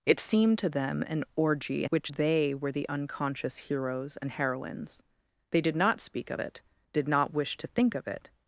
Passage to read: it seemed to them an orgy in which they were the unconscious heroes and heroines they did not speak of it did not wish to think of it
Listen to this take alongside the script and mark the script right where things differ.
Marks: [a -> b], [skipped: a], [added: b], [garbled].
it seemed to them an orgy in which they were the unconscious heroes and heroines they did not speak of it did not wish to think of it